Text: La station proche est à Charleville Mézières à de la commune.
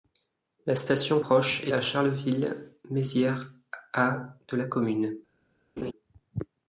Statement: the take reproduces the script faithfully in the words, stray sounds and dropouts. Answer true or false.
false